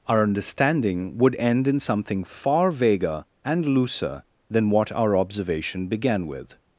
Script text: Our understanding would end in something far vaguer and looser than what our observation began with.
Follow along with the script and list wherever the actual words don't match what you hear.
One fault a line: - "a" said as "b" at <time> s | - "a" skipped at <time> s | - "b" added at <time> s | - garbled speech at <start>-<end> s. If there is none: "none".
none